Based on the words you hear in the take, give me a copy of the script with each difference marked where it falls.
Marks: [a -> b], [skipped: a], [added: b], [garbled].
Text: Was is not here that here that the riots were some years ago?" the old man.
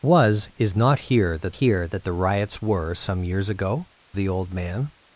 Was is not here that here that the riots were some years ago?" the old man.